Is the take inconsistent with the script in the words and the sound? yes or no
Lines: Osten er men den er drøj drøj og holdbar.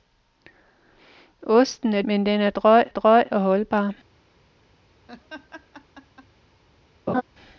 yes